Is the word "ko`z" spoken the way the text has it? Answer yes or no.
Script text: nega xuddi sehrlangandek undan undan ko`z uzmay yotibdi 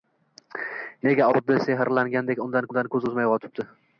yes